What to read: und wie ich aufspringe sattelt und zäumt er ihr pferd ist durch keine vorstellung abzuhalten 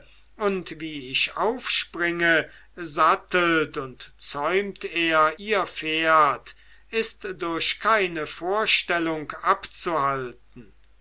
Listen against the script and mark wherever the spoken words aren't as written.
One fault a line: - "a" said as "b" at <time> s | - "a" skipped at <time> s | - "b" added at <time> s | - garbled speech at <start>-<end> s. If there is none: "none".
none